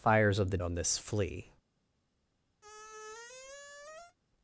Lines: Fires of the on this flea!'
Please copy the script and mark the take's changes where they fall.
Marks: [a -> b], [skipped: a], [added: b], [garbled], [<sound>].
Fires of the on this flea!' [squeak]